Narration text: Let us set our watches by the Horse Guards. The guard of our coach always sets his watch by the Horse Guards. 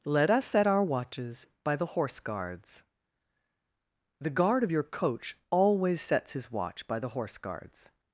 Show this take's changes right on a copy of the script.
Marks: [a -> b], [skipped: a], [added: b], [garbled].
Let us set our watches by the Horse Guards. The guard of [our -> your] coach always sets his watch by the Horse Guards.